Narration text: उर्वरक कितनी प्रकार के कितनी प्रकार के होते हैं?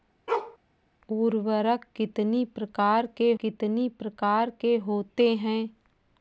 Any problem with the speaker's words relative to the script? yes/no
no